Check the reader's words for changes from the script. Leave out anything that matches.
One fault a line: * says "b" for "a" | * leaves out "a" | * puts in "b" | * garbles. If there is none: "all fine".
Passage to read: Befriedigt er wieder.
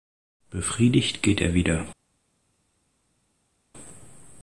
* puts in "geht"